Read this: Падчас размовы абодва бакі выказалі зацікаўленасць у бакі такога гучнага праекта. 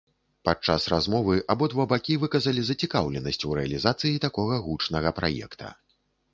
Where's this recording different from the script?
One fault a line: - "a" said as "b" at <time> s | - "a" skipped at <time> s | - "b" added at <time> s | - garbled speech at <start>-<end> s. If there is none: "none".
- "бакі" said as "рэалізацыі" at 3.6 s